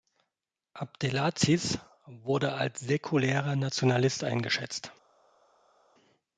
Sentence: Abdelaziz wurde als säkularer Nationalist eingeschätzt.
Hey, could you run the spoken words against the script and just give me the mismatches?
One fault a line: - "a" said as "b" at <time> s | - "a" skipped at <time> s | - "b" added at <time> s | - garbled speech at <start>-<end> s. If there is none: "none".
none